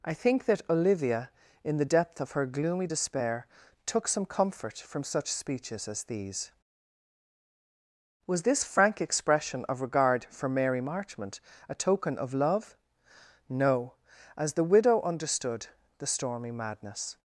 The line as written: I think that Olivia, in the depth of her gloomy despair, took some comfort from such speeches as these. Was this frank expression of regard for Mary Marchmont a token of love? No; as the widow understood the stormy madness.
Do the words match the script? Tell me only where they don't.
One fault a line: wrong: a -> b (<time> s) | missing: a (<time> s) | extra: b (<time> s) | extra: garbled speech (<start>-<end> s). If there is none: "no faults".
no faults